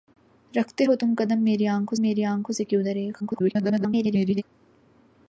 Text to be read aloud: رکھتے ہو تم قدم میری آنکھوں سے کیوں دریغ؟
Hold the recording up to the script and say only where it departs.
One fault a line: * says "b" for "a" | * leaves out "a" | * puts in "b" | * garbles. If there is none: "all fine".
* puts in "میری آنکھوں"
* garbles